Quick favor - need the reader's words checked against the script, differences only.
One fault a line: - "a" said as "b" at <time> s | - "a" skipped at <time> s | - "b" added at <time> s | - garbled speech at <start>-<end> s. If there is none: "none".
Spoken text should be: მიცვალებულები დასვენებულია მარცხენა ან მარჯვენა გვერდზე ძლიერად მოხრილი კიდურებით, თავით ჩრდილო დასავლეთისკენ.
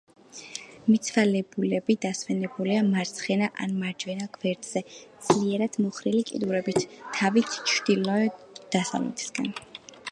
none